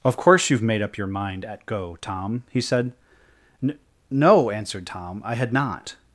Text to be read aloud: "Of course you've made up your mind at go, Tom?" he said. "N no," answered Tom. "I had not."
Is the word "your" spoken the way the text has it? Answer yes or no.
yes